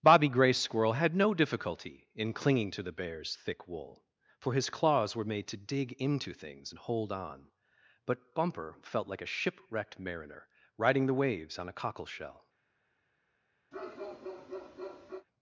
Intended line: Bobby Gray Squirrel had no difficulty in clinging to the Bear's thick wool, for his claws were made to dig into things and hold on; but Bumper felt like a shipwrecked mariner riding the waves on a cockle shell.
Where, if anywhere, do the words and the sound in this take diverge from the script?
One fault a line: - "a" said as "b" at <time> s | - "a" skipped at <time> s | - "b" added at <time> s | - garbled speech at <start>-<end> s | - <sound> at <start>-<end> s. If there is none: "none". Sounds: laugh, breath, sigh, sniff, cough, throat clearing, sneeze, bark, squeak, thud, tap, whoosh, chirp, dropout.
- bark at 13.7-15.3 s